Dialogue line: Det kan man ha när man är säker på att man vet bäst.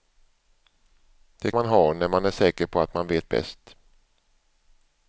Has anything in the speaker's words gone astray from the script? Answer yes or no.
yes